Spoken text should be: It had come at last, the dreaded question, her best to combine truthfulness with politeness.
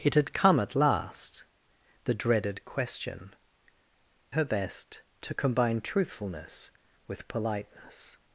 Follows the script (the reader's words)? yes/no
yes